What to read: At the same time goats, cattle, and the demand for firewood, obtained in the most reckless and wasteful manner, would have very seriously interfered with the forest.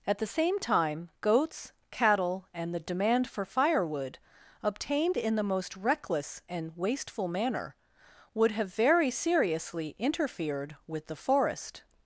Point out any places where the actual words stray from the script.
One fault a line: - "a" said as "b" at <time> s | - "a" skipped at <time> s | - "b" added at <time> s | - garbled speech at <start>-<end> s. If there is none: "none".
none